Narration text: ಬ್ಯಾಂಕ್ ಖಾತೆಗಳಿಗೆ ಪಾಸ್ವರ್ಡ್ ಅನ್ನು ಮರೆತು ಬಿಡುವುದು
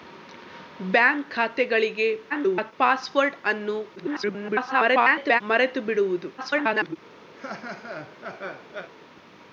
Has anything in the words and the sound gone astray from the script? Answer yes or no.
yes